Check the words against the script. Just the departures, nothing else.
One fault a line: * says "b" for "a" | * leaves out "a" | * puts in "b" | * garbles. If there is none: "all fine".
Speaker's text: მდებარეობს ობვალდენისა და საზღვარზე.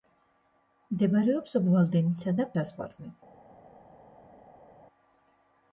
all fine